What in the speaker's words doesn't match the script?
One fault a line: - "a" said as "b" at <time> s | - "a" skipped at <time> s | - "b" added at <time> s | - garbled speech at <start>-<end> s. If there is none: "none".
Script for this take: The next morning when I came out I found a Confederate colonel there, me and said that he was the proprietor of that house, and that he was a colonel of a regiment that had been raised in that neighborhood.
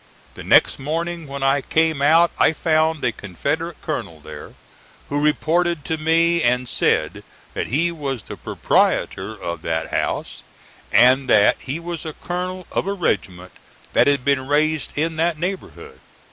- "who reported to" added at 5.1 s